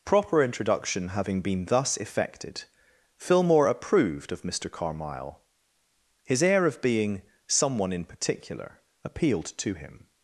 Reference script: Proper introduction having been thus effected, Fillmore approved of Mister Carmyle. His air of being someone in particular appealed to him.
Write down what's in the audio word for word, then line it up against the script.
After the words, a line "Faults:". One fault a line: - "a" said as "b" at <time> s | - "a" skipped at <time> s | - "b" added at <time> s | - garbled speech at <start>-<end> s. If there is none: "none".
Proper introduction having been thus effected, Fillmore approved of Mister Carmyle. His air of being someone in particular appealed to him.
Faults:
none